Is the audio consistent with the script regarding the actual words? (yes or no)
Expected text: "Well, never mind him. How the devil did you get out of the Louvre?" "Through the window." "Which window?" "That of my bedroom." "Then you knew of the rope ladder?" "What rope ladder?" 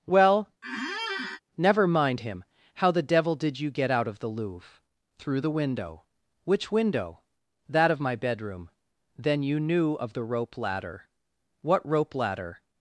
yes